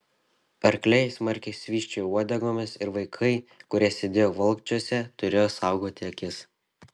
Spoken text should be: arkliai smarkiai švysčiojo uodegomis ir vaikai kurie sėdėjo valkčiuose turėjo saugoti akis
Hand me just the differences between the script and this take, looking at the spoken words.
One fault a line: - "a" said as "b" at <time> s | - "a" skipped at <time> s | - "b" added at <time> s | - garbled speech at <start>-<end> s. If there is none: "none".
none